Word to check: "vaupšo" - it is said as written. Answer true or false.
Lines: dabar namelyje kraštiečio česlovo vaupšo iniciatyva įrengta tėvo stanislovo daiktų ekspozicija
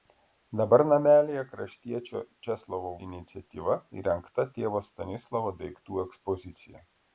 false